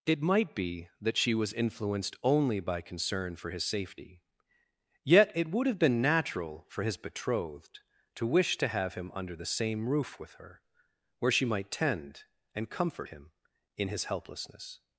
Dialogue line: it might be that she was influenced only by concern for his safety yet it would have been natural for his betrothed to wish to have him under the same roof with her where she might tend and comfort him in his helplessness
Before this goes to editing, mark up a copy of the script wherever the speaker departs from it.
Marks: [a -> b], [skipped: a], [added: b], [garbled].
it might be that she was influenced only by concern for his safety yet it would have been natural for his betrothed to wish to have him under the same roof with her where she might tend and comfort him in his helplessness